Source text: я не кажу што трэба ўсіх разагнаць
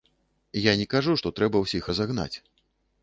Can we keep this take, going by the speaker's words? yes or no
yes